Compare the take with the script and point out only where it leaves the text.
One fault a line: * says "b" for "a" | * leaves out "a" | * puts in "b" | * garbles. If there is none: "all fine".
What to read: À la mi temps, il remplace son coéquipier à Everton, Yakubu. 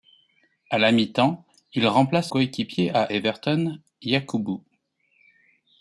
* leaves out "son"